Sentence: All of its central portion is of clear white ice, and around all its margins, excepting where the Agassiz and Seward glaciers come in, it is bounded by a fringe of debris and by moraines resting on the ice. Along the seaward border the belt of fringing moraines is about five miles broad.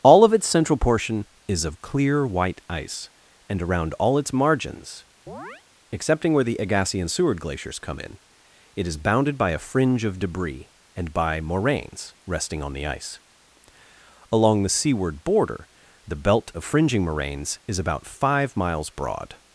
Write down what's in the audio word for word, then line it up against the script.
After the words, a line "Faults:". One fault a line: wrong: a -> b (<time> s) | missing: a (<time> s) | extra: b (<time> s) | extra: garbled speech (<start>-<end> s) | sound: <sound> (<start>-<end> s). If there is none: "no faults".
All of its central portion is of clear white ice, and around all its margins, excepting where the Agassiz and Seward glaciers come in, it is bounded by a fringe of debris and by moraines resting on the ice. Along the seaward border the belt of fringing moraines is about five miles broad.
Faults:
sound: chirp (5.3-5.6 s)